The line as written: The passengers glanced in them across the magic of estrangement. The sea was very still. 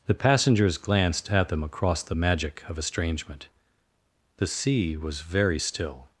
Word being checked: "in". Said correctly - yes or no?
no